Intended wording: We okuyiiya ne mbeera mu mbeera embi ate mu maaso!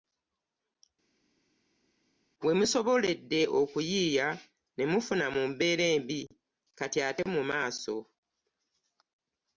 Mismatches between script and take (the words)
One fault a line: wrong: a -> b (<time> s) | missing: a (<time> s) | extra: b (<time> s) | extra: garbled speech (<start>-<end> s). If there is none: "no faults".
extra: musoboledde (2.6 s)
wrong: mbeera -> mufuna (4.9 s)
extra: kati (6.8 s)